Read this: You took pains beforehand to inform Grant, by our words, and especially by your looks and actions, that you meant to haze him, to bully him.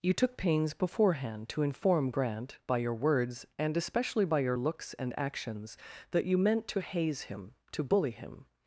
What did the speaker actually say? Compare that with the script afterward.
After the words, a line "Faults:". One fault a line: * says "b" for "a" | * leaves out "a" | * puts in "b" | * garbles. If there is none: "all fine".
You took pains beforehand to inform Grant, by your words, and especially by your looks and actions, that you meant to haze him, to bully him.
Faults:
* says "your" for "our"